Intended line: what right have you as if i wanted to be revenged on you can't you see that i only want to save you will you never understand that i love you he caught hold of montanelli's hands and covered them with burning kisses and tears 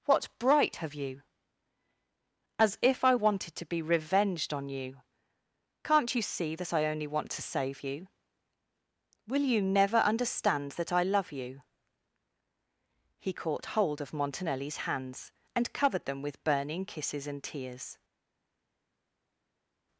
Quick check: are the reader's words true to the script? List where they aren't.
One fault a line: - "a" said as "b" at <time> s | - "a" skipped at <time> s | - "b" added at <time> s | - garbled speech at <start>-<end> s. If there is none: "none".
- "right" said as "bright" at 0.4 s